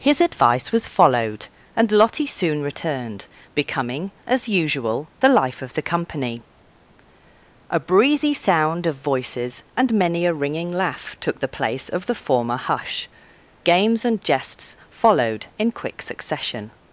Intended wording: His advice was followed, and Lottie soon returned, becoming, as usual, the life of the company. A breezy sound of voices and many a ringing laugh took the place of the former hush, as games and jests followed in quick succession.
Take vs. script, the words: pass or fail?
fail